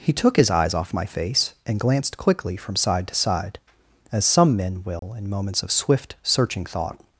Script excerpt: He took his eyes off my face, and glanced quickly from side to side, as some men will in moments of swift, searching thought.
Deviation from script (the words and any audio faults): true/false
true